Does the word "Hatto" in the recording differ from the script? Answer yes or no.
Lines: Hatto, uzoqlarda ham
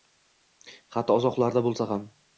no